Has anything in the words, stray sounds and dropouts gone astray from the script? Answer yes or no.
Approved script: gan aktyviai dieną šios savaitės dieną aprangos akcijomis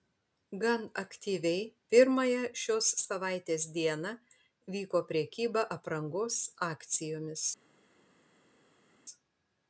yes